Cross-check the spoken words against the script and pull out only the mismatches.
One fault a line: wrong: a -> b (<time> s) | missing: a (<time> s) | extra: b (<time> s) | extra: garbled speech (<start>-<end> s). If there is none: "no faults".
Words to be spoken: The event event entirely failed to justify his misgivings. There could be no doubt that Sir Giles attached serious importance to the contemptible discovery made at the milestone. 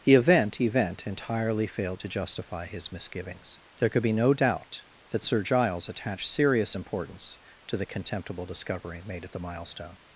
no faults